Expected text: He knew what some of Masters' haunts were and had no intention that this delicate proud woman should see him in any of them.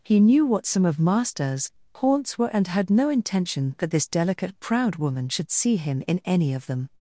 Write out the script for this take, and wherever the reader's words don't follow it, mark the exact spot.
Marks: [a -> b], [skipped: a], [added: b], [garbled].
He knew what some of Masters' haunts were and had no intention that this delicate proud woman should see him in any of them.